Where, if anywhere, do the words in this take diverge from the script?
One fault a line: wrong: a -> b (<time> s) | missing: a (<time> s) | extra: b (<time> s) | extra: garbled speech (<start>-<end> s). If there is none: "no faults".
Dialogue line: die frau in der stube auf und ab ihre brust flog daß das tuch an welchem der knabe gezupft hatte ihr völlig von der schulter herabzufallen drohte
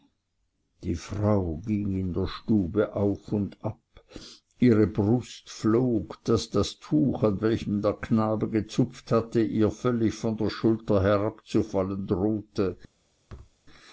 extra: ging (1.6 s)